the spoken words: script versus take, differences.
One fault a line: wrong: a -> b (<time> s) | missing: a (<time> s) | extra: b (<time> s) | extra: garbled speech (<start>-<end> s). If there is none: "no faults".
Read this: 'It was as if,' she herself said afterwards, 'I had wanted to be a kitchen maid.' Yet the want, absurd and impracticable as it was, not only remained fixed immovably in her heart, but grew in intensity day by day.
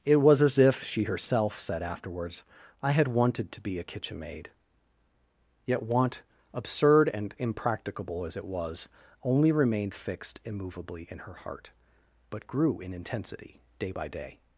missing: the (5.8 s)
missing: not (8.9 s)